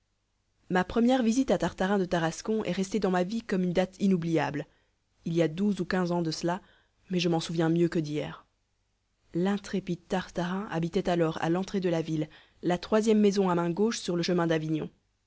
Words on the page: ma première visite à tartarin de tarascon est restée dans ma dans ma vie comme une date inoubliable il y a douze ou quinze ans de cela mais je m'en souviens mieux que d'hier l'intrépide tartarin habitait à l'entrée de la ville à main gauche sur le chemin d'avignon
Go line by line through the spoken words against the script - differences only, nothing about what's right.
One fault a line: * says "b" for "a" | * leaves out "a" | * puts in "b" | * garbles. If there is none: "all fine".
* leaves out "dans ma"
* puts in "alors"
* puts in "la troisième maison"